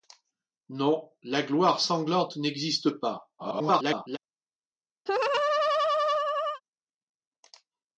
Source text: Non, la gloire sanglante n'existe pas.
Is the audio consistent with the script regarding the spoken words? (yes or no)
no